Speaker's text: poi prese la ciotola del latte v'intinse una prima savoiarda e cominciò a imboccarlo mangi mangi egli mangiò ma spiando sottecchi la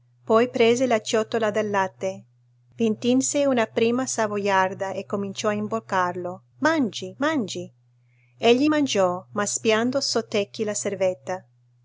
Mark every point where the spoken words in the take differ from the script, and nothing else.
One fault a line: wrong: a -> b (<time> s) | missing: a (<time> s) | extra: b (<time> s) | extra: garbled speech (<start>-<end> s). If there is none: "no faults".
no faults